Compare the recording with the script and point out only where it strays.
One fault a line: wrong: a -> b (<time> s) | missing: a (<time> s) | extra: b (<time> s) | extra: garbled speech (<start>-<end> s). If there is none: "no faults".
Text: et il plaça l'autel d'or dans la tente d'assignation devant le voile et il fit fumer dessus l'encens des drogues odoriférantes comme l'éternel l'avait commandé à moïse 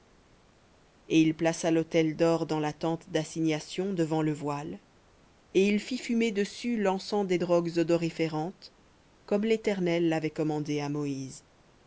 no faults